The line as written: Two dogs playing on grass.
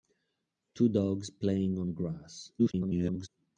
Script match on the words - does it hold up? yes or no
no